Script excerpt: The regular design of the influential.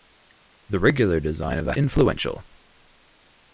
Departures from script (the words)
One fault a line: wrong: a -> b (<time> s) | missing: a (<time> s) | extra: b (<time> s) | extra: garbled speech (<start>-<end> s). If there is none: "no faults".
no faults